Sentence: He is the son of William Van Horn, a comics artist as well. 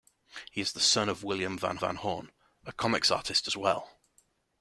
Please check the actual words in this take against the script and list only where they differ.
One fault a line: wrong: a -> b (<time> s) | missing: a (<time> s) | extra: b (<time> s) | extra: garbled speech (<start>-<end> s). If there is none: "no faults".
extra: Van (1.8 s)